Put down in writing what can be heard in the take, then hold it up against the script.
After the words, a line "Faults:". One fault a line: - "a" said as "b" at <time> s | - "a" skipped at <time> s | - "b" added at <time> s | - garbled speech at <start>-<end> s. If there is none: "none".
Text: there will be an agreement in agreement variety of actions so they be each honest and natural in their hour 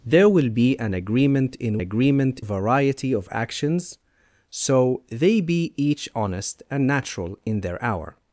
there will be an agreement in agreement variety of actions so they be each honest and natural in their hour
Faults:
none